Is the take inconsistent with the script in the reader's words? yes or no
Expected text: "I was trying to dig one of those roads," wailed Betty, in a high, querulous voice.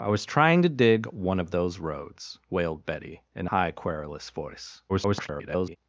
yes